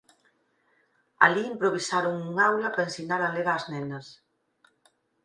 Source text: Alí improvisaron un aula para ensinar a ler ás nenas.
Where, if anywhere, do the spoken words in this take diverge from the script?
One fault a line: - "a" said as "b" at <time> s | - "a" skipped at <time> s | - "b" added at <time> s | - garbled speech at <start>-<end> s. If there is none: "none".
none